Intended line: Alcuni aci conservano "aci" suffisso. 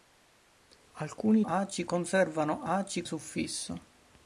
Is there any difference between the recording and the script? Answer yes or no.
no